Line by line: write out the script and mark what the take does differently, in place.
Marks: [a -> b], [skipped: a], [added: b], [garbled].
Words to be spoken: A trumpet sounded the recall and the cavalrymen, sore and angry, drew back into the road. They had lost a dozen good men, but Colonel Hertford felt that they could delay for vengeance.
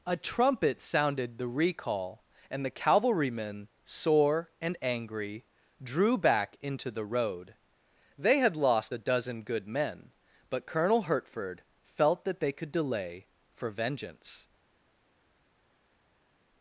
A trumpet sounded the recall and the cavalrymen, sore and angry, drew back into the road. They had lost a dozen good men, but Colonel Hertford felt that they could delay for vengeance.